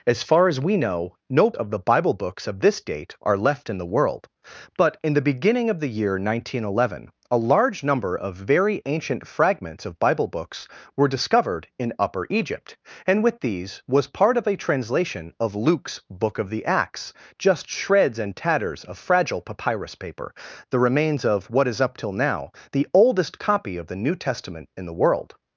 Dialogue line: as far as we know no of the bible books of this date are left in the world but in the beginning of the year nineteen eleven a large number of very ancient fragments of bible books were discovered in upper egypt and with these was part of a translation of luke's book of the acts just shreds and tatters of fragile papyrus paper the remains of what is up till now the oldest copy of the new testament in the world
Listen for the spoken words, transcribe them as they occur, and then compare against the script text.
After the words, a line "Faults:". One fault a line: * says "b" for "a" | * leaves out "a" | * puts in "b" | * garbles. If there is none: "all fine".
as far as we know no of the bible books of this date are left in the world but in the beginning of the year nineteen eleven a large number of very ancient fragments of bible books were discovered in upper egypt and with these was part of a translation of luke's book of the acts just shreds and tatters of fragile papyrus paper the remains of what is up till now the oldest copy of the new testament in the world
Faults:
all fine